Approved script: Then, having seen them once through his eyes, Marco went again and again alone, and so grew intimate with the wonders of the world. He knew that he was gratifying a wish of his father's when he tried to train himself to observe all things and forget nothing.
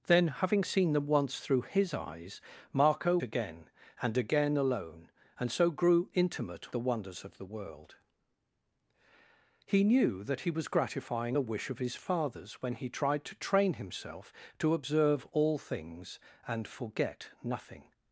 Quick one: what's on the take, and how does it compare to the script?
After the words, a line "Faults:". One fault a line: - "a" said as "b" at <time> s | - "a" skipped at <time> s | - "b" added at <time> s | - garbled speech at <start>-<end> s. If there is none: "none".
Then, having seen them once through his eyes, Marco again and again alone, and so grew intimate the wonders of the world. He knew that he was gratifying a wish of his father's when he tried to train himself to observe all things and forget nothing.
Faults:
- "went" skipped at 3.2 s
- "with" skipped at 6.8 s